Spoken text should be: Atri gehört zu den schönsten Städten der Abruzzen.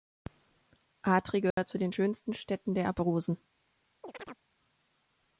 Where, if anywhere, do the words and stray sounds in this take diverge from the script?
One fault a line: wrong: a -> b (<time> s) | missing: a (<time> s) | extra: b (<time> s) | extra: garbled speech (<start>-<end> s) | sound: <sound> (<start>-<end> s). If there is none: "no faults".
sound: dropout (1.5-1.6 s)
sound: chirp (4.0-4.4 s)